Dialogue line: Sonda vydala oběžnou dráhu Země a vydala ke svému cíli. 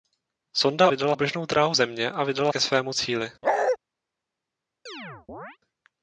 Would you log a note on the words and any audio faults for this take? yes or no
yes